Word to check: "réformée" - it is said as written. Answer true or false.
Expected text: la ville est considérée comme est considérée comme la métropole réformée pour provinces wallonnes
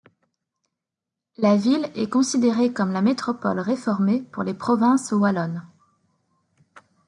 true